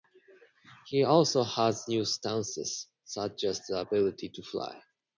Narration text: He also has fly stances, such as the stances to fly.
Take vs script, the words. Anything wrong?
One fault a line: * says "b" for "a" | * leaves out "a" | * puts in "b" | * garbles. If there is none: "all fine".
* says "new" for "fly"
* says "ability" for "stances"